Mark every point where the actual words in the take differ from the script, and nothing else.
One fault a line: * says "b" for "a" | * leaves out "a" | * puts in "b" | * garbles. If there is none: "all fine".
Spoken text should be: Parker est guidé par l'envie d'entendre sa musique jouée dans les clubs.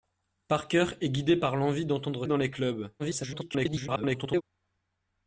* leaves out "sa musique jouée"
* garbles